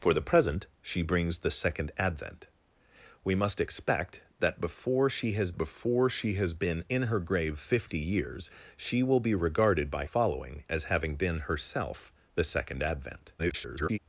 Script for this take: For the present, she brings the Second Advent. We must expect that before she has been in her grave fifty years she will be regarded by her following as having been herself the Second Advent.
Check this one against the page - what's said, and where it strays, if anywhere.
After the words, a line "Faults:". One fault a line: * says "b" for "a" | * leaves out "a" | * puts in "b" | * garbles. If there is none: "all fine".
For the present, she brings the Second Advent. We must expect that before she has before she has been in her grave fifty years she will be regarded by following as having been herself the Second Advent. [garbled]
Faults:
* puts in "before she has"
* leaves out "her"
* garbles